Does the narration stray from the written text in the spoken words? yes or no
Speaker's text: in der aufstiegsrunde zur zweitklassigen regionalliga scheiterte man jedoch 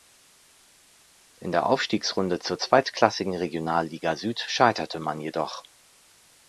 yes